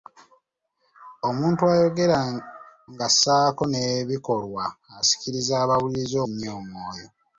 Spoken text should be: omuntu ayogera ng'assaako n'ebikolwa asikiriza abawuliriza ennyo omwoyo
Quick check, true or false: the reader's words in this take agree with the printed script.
true